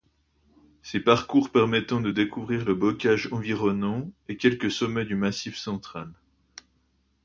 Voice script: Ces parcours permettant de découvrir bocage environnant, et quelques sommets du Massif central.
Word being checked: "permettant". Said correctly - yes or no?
yes